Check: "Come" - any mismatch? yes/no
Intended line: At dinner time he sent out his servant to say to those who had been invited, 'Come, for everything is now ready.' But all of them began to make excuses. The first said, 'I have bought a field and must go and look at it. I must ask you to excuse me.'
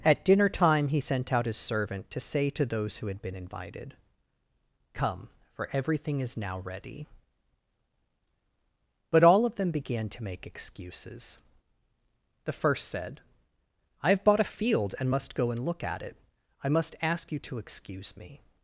no